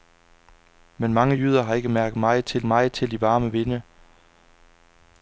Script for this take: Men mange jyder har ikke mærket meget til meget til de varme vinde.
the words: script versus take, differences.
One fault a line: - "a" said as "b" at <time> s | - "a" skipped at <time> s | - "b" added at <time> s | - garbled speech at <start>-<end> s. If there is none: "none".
none